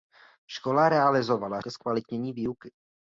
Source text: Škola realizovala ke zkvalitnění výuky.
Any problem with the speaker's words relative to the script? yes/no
no